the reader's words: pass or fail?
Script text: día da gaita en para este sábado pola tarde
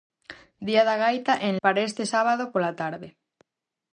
pass